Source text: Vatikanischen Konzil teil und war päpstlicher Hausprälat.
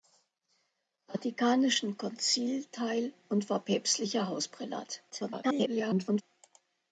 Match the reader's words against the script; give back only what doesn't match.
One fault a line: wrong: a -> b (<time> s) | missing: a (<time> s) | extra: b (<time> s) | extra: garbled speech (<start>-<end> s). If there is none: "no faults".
extra: garbled speech (5.1-6.2 s)